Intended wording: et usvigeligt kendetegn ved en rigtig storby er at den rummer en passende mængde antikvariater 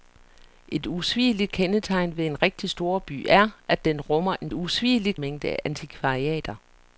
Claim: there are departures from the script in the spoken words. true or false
true